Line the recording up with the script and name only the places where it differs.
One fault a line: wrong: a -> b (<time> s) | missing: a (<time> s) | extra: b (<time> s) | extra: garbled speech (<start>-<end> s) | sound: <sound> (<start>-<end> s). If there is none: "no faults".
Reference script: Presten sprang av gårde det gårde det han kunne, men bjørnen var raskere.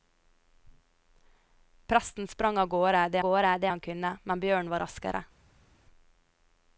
no faults